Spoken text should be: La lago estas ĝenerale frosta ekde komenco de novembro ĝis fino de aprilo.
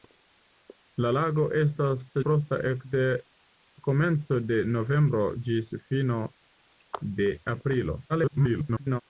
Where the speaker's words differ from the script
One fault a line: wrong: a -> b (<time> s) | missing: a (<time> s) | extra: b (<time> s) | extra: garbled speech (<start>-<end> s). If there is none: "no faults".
missing: ĝenerale (2.0 s)
extra: garbled speech (8.1-9.0 s)